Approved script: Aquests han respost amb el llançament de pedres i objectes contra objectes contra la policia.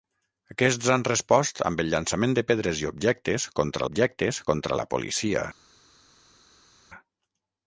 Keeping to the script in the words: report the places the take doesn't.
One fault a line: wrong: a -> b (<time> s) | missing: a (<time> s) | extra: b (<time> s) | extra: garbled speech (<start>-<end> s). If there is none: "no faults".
no faults